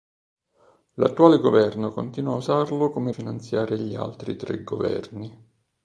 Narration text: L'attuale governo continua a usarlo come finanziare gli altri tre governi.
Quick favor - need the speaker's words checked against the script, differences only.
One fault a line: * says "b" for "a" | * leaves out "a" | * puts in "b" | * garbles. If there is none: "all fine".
all fine